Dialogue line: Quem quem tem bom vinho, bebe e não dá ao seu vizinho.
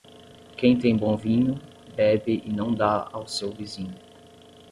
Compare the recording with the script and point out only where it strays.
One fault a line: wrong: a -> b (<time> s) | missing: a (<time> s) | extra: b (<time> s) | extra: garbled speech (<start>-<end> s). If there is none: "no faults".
missing: quem (0.8 s)